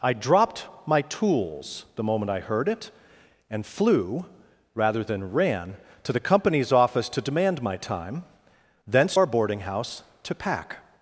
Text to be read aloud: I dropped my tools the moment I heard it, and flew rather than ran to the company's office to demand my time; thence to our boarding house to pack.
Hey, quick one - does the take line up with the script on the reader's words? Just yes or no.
no